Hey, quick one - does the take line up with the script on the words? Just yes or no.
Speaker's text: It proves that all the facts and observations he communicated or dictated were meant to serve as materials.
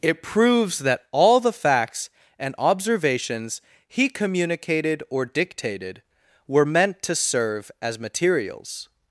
yes